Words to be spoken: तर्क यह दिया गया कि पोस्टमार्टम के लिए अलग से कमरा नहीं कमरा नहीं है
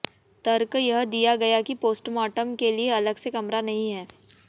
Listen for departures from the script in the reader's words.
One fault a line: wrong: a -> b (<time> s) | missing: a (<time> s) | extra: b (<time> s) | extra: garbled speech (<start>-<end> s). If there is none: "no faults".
missing: कमरा नहीं (3.9 s)